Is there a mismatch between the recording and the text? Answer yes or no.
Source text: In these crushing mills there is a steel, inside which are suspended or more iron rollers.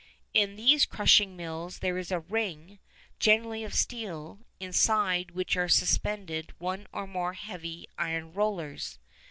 yes